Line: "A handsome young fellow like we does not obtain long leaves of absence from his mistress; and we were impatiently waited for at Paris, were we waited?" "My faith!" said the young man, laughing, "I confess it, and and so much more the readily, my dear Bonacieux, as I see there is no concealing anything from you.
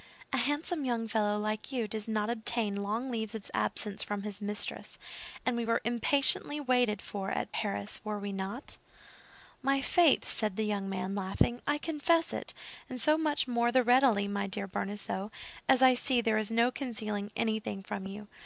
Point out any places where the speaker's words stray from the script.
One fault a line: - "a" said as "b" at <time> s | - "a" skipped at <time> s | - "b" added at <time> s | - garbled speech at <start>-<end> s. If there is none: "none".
- "we" said as "you" at 1.7 s
- "waited" said as "not" at 8.3 s
- "and" skipped at 13.0 s